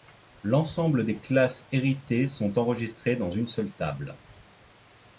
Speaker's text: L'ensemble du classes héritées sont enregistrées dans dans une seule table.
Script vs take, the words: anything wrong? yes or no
yes